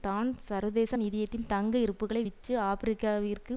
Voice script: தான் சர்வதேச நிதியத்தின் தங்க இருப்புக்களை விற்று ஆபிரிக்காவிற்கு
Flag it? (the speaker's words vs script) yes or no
no